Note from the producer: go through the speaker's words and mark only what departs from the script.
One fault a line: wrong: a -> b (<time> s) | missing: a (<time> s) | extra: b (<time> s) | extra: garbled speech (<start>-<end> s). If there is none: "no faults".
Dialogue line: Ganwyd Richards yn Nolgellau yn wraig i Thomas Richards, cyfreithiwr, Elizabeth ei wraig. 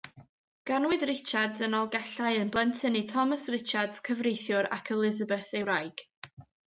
wrong: wraig -> blentyn (2.5 s)
extra: ac (4.8 s)